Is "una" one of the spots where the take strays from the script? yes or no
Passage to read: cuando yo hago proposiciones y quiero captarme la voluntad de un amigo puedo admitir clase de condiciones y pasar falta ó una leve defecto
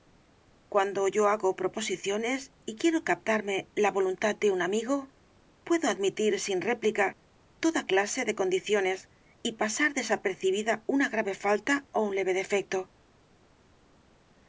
yes